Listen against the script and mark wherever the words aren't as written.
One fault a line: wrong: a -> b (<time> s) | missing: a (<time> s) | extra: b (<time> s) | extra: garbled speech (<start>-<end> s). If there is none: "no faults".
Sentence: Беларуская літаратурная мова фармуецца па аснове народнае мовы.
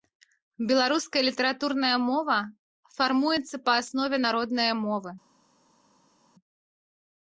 no faults